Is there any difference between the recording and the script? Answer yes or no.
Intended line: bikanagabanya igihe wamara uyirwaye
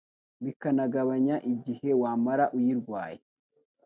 no